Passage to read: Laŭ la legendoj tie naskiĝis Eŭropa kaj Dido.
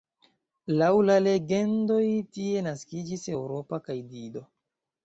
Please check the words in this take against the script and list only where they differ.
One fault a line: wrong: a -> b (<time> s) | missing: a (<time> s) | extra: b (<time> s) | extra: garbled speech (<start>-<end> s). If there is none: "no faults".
no faults